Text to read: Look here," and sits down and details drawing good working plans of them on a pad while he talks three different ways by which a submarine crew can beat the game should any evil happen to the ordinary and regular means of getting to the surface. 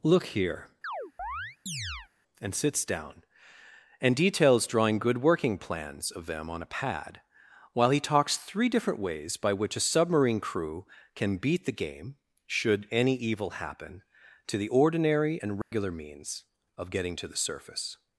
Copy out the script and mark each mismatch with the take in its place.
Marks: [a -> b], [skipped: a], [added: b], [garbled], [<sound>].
Look here," [chirp] and sits down and details drawing good working plans of them on a pad while he talks three different ways by which a submarine crew can beat the game should any evil happen to the ordinary and regular [dropout] means of getting to the surface.